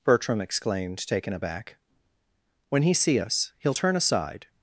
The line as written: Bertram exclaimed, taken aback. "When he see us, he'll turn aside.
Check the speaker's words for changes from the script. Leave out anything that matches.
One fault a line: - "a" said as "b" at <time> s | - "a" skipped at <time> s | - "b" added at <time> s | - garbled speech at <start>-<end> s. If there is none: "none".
none